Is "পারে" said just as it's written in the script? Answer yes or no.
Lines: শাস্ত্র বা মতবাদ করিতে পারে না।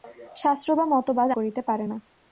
yes